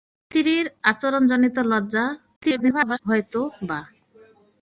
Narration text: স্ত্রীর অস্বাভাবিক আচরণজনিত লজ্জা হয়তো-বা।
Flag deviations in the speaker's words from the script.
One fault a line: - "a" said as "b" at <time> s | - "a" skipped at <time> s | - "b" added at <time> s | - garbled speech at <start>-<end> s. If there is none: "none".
- "অস্বাভাবিক" skipped at 0.6 s
- garbled speech at 2.4-3.0 s